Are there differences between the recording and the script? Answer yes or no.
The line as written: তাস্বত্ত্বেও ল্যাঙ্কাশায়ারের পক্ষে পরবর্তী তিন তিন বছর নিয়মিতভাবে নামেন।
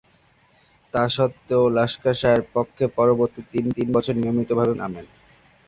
no